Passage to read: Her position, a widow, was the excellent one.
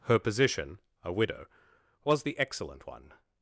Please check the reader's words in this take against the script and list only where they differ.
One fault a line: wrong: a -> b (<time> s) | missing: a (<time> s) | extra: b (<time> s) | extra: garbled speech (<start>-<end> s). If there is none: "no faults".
no faults